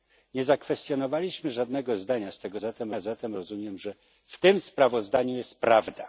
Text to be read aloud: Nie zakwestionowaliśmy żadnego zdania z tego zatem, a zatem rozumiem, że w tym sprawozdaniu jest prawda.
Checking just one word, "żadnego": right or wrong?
right